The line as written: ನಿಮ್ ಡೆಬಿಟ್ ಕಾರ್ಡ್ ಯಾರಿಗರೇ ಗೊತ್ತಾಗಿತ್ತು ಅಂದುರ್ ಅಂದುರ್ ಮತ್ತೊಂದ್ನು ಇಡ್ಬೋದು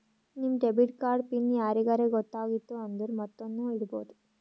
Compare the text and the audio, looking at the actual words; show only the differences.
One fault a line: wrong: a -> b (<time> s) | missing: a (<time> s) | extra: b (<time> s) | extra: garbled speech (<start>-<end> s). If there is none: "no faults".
extra: ಪಿನ್ (1.3 s)
missing: ಅಂದುರ್ (3.1 s)